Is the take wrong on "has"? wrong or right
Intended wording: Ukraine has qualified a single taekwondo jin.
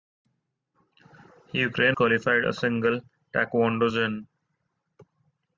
wrong